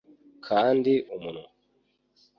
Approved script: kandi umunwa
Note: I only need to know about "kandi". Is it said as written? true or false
true